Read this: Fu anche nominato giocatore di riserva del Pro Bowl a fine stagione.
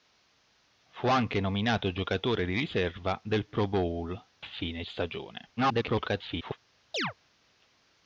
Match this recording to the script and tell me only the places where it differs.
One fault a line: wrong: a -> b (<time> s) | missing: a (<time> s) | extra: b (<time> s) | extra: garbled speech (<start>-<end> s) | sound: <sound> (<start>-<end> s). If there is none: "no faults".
missing: a (4.2 s)
extra: garbled speech (5.6-6.6 s)
sound: chirp (6.9-7.1 s)